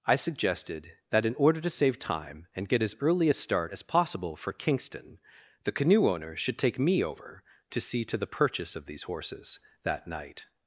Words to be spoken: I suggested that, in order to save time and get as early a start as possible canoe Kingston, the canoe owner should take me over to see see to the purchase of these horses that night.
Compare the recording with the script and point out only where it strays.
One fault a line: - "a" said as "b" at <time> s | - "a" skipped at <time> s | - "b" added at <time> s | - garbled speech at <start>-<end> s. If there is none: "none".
- "canoe" said as "for" at 4.4 s
- "see" skipped at 8.0 s